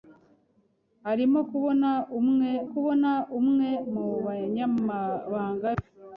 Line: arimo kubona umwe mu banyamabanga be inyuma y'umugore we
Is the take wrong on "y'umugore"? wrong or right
wrong